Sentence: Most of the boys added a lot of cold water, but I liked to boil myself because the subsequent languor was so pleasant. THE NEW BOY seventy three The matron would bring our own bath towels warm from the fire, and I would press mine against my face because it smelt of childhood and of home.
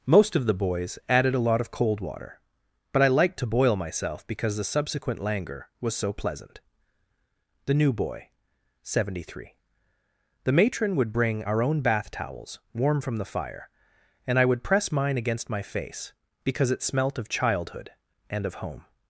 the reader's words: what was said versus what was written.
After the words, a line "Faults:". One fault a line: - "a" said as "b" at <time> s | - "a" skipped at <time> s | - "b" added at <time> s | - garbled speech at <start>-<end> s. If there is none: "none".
Most of the boys added a lot of cold water, but I liked to boil myself because the subsequent languor was so pleasant. THE NEW BOY seventy three The matron would bring our own bath towels warm from the fire, and I would press mine against my face because it smelt of childhood and of home.
Faults:
none